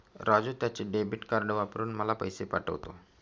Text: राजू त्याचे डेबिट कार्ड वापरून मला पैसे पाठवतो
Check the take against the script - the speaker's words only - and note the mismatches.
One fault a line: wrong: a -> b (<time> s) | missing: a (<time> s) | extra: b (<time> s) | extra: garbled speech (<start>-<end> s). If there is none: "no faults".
no faults